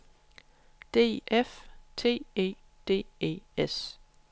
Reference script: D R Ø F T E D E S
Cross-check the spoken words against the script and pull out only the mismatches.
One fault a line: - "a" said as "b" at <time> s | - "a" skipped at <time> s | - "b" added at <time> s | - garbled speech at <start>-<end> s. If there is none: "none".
- "R Ø" skipped at 1.2 s